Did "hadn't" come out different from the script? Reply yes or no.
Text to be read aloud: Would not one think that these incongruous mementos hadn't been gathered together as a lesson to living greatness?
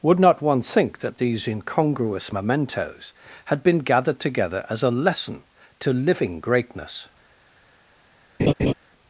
yes